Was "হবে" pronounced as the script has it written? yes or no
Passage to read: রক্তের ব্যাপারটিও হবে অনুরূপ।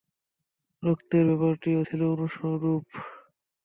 no